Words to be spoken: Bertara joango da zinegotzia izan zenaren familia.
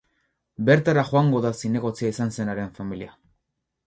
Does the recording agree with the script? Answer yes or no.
yes